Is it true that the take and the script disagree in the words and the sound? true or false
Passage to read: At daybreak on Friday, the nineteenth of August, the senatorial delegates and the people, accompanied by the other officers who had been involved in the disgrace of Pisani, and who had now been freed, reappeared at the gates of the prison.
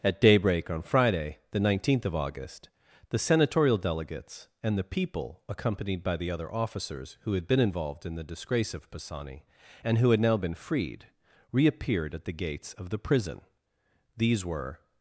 true